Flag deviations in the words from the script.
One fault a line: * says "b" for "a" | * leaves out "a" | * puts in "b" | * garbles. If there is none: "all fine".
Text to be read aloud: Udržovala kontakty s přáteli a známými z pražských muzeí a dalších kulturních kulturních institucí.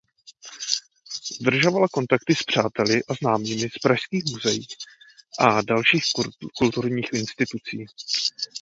* leaves out "kulturních"